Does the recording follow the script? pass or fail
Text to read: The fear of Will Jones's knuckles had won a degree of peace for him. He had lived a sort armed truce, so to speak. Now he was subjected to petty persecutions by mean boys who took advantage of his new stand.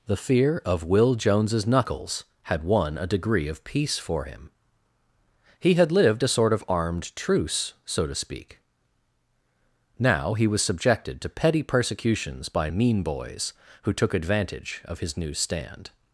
fail